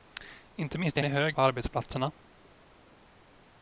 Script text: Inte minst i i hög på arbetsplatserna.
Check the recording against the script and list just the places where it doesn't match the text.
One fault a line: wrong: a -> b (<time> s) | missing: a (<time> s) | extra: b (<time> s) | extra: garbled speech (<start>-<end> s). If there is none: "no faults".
no faults